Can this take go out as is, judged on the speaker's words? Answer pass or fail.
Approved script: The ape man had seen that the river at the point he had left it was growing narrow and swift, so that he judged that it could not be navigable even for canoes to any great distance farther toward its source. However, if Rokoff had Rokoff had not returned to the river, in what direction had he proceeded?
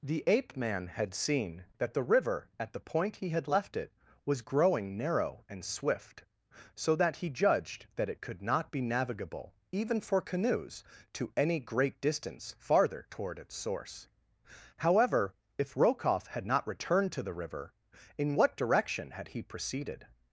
fail